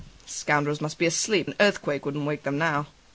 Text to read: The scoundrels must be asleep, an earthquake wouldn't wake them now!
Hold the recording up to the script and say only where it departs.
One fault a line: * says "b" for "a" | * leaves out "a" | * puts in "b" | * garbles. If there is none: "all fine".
all fine